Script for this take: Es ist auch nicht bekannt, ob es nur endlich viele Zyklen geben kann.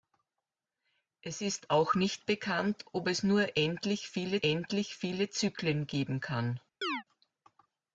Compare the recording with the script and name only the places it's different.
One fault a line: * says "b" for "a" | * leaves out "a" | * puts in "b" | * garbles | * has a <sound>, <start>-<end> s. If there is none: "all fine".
* puts in "endlich viele"
* has a chirp, 6.8-7.0 s